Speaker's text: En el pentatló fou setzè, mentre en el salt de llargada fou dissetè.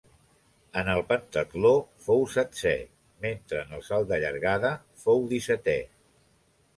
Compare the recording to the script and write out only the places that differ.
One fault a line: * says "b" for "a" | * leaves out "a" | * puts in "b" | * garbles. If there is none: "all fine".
all fine